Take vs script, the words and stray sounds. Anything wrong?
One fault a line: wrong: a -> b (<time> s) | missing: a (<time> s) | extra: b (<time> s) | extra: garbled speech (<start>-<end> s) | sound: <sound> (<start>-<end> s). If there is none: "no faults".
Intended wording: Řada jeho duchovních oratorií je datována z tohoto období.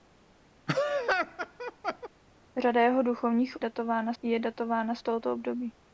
sound: laugh (0.7-2.1 s)
wrong: oratorií -> datována (3.6 s)